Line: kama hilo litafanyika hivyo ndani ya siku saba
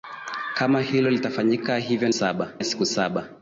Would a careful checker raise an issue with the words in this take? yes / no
yes